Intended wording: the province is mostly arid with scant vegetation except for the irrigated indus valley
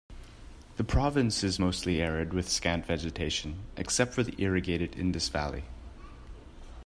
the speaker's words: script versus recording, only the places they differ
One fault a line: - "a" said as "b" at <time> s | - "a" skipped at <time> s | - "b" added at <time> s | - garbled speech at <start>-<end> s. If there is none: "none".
none